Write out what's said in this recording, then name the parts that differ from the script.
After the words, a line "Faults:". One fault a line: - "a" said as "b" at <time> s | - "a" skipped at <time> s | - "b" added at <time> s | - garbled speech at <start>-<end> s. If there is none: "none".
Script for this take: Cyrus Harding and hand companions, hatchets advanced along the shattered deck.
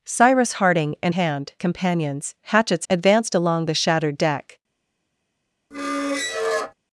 Cyrus Harding and hand companions, hatchets advanced along the shattered deck.
Faults:
none